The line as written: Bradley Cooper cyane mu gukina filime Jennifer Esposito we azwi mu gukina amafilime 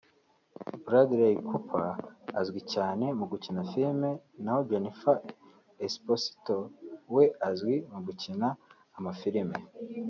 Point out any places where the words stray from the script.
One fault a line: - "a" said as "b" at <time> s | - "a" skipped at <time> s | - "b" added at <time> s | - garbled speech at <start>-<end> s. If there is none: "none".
- "azwi" added at 2.4 s
- "naho" added at 4.4 s